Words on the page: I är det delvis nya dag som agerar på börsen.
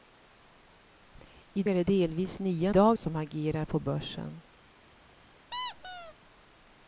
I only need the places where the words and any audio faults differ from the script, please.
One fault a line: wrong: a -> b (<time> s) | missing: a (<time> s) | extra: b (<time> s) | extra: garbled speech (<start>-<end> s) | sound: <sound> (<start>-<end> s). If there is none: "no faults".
sound: squeak (5.5-6.1 s)